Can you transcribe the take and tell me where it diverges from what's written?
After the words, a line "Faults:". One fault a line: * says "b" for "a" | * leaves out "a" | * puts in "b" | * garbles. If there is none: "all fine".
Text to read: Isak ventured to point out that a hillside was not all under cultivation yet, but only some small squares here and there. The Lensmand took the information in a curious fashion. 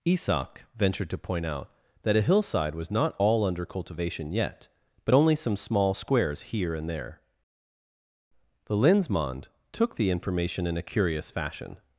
Isak ventured to point out that a hillside was not all under cultivation yet, but only some small squares here and there. The Lensmand took the information in a curious fashion.
Faults:
all fine